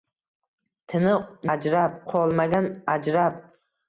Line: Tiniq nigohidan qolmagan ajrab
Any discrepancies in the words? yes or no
yes